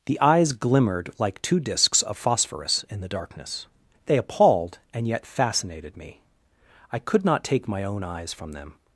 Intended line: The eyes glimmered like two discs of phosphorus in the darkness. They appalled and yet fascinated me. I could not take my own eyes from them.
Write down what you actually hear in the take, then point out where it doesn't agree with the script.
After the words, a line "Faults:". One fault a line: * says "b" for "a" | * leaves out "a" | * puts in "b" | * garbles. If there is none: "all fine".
The eyes glimmered like two discs of phosphorus in the darkness. They appalled and yet fascinated me. I could not take my own eyes from them.
Faults:
all fine